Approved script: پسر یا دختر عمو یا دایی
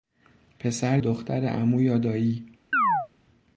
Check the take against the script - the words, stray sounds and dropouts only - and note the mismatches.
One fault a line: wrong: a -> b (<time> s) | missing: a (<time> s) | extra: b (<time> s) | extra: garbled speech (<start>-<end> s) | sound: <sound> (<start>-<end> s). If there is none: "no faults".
missing: یا (1.0 s)
sound: chirp (2.7-3.1 s)